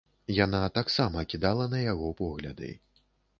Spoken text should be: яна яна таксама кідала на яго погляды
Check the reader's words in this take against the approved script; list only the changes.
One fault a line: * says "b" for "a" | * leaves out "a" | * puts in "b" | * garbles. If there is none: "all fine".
* leaves out "яна"